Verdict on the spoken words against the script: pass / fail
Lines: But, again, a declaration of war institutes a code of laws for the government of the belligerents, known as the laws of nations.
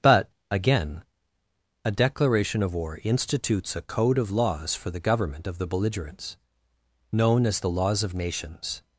pass